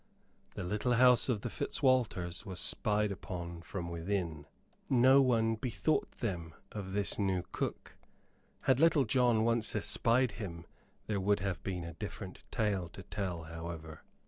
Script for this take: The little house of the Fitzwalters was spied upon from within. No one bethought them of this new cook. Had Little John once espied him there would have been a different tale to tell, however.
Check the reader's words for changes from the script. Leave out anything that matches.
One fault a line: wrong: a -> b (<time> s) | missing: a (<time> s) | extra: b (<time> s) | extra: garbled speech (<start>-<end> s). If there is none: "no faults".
no faults